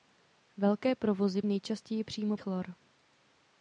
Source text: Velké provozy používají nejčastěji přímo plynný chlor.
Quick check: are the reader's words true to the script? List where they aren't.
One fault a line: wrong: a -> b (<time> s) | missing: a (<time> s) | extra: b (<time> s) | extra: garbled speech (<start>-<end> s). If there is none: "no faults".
missing: používají (1.4 s)
missing: plynný (2.4 s)